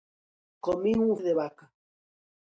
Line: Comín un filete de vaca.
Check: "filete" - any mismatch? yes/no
yes